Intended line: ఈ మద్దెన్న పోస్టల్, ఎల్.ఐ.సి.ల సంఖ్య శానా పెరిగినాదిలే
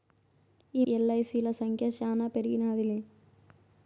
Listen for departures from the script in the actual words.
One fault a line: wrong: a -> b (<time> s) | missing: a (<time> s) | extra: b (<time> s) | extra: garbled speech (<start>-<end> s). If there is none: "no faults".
missing: మద్దెన్న పోస్టల్ (0.8 s)